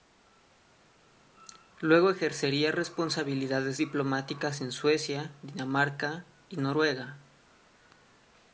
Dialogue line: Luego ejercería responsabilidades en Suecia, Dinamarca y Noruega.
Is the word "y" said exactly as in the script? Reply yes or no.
yes